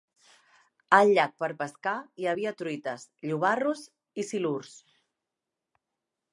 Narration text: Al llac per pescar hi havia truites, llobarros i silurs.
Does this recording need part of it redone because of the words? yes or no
no